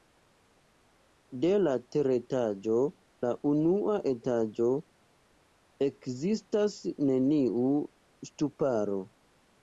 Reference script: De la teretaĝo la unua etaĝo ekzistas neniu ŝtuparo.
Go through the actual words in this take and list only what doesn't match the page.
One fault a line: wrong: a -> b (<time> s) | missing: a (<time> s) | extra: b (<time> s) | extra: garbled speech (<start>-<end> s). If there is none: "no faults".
no faults